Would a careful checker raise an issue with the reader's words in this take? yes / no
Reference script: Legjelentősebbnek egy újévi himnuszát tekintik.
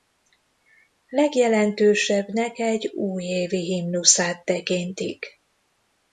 no